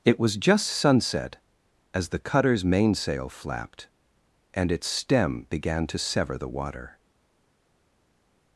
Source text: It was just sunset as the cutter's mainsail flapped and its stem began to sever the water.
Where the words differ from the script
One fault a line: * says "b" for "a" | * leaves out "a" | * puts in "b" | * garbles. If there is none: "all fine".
all fine